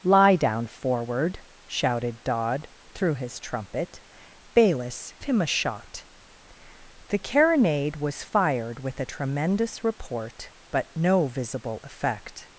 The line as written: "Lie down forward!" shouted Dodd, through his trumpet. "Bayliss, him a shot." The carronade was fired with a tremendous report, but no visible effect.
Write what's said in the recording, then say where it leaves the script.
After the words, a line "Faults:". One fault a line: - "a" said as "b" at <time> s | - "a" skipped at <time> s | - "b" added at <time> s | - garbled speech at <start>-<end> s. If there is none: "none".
"Lie down forward!" shouted Dodd, through his trumpet. "Bayliss, him a shot." The carronade was fired with a tremendous report, but no visible effect.
Faults:
none